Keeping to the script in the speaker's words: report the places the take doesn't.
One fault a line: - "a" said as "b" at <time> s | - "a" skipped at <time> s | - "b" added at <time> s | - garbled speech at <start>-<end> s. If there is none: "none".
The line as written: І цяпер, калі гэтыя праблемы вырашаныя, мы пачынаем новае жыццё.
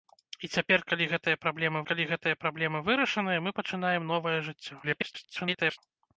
- "калі гэтыя праблемы" added at 1.9 s
- garbled speech at 4.8-5.8 s